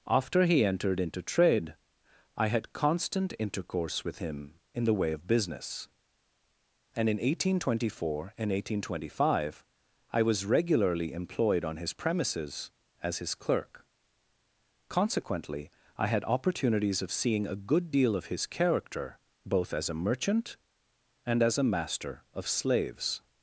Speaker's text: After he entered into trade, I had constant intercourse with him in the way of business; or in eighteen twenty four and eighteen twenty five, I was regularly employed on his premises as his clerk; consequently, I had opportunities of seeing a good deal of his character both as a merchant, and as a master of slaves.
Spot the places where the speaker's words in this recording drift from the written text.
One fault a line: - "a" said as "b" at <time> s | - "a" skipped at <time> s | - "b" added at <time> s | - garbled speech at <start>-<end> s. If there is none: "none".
- "or" said as "and" at 6.9 s